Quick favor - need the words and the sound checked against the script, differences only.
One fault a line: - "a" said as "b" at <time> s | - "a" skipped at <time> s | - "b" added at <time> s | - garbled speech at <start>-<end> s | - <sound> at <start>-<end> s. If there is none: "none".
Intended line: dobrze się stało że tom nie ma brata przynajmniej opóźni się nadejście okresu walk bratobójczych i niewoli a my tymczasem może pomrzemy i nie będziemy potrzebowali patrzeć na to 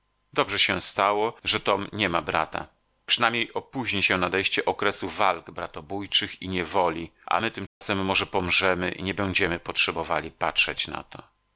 - dropout at 7.7-7.8 s